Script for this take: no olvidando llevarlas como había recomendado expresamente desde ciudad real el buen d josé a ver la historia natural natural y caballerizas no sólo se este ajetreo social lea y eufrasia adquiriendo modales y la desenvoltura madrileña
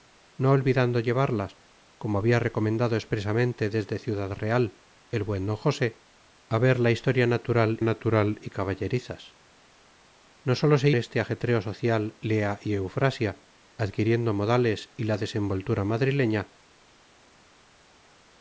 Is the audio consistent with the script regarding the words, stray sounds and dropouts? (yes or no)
yes